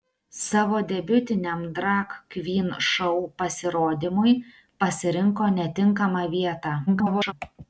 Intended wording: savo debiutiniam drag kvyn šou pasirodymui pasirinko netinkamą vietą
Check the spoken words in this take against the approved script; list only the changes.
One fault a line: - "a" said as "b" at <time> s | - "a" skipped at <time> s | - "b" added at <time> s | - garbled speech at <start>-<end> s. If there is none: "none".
- garbled speech at 6.9-7.3 s